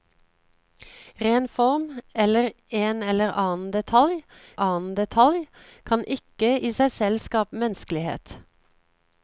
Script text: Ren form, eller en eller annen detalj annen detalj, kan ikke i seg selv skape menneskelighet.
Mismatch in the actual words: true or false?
false